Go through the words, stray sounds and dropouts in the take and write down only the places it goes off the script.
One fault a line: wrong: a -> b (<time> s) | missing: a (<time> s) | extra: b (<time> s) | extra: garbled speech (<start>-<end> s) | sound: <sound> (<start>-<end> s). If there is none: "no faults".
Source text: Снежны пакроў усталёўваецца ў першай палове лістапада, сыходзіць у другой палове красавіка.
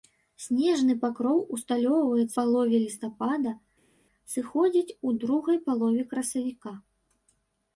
missing: ў першай (2.4 s)